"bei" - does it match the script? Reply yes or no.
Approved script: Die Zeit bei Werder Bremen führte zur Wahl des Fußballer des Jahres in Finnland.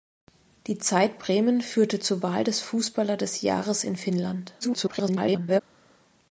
no